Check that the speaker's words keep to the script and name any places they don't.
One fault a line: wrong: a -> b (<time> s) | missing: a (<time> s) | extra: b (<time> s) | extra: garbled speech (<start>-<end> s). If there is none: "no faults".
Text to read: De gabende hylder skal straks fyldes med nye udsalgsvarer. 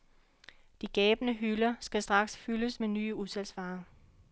no faults